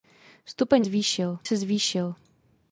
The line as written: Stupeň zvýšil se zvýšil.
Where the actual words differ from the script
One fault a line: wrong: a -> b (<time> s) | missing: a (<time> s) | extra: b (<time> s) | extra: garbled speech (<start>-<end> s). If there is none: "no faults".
no faults